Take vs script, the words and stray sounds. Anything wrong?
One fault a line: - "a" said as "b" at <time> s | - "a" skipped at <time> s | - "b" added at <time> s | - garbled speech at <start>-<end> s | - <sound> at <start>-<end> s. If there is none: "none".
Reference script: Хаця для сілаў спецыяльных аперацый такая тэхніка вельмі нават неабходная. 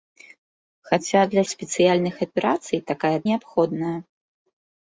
- "сілаў" skipped at 1.4 s
- "тэхніка вельмі нават" skipped at 3.1 s